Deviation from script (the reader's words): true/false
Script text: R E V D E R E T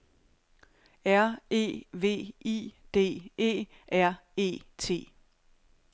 true